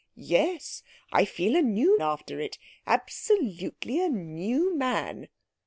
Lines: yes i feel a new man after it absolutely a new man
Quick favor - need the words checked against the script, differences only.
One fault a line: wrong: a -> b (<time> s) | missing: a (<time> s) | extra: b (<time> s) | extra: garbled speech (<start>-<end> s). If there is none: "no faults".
missing: man (2.0 s)